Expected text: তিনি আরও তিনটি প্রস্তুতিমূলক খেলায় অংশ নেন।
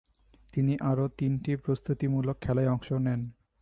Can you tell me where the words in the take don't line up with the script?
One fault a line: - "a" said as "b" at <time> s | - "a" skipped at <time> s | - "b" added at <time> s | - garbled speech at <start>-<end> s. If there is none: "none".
none